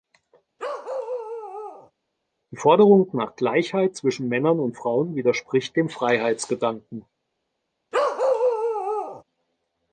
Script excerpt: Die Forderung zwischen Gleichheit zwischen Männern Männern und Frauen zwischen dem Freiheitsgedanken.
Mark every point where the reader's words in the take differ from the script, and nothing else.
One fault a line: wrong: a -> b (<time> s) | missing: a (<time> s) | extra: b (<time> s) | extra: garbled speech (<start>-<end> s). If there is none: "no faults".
wrong: zwischen -> nach (3.1 s)
missing: Männern (4.6 s)
wrong: zwischen -> widerspricht (5.1 s)